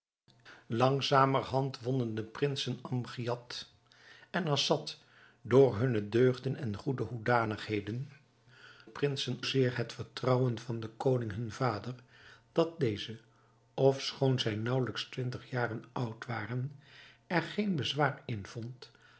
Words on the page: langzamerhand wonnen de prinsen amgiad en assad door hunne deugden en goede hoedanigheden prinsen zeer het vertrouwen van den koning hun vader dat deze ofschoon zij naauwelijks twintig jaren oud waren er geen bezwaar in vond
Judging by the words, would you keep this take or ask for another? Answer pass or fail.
pass